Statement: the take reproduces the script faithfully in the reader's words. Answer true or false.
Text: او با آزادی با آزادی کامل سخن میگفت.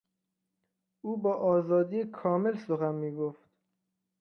false